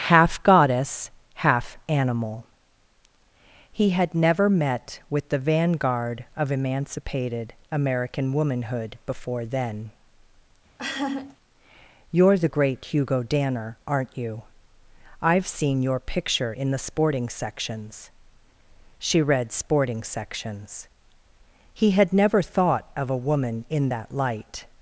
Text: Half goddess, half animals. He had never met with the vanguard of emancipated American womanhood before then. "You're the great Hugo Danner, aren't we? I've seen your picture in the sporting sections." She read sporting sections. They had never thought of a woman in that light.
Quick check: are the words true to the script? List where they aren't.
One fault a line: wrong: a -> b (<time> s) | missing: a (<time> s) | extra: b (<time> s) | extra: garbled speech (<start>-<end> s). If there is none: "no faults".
wrong: animals -> animal (1.9 s)
wrong: we -> you (14.2 s)
wrong: They -> He (21.7 s)